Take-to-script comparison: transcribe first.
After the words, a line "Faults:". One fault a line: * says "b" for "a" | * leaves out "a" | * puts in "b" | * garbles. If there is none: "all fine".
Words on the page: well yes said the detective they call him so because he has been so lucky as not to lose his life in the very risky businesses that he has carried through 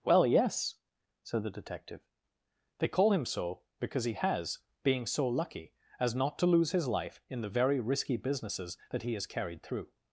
well yes said the detective they call him so because he has being so lucky as not to lose his life in the very risky businesses that he has carried through
Faults:
* says "being" for "been"